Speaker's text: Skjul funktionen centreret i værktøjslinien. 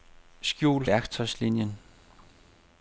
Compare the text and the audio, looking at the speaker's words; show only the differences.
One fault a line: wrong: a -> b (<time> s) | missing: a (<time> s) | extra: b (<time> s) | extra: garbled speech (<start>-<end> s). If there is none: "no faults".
missing: funktionen centreret i (0.9 s)